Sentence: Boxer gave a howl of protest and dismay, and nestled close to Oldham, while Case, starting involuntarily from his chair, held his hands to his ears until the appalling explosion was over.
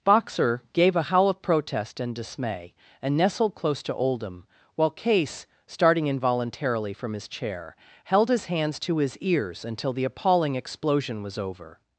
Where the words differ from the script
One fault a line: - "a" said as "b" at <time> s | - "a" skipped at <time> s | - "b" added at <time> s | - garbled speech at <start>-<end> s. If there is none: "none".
none